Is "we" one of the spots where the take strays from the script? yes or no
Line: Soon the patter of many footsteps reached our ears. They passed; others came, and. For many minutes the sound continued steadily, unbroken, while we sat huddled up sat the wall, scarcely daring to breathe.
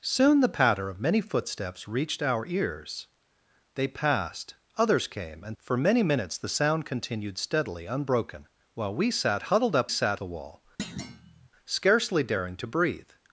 no